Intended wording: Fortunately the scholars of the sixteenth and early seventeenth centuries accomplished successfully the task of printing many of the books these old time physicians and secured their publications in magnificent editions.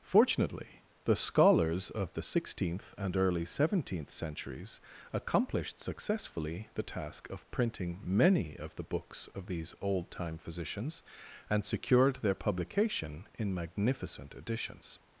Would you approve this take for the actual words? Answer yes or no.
no